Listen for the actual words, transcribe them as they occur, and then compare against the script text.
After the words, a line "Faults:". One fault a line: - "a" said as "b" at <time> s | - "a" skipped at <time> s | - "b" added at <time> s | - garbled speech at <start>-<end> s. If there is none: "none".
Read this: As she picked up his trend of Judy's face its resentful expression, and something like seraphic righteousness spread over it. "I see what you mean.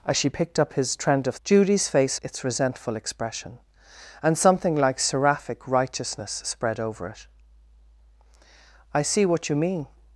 As she picked up his trend of Judy's face its resentful expression, and something like seraphic righteousness spread over it. "I see what you mean.
Faults:
none